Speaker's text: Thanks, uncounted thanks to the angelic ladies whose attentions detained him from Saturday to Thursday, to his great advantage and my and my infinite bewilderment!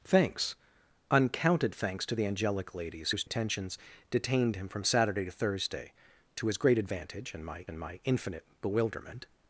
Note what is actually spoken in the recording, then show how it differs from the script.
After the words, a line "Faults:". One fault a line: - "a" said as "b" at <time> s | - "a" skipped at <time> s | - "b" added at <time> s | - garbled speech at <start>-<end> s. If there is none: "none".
Thanks, uncounted thanks to the angelic ladies whose attentions detained him from Saturday to Thursday, to his great advantage and my and my infinite bewilderment!
Faults:
none